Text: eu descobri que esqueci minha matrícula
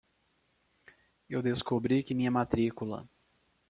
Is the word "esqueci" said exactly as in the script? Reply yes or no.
no